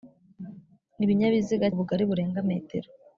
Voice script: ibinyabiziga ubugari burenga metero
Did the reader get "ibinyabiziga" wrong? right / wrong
right